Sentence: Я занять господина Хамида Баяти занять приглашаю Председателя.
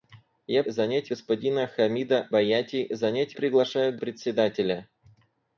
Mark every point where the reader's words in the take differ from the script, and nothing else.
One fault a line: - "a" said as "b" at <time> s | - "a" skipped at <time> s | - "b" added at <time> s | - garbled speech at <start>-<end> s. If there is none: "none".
none